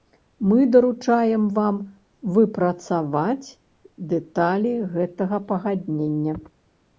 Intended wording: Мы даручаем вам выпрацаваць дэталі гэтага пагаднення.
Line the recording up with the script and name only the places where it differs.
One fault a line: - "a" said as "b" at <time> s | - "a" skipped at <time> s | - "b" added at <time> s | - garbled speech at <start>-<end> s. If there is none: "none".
none